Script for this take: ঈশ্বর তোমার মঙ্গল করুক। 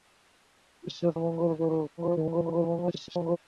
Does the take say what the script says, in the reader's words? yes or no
no